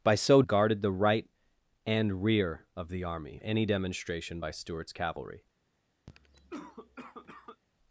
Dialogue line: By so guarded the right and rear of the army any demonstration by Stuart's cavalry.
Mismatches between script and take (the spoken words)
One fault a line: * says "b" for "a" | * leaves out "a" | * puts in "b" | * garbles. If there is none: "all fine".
all fine